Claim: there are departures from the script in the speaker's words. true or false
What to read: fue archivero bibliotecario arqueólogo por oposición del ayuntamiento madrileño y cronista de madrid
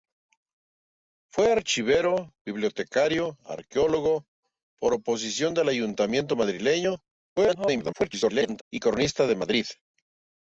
true